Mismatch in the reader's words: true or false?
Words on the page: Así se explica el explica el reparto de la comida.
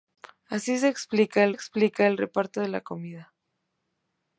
false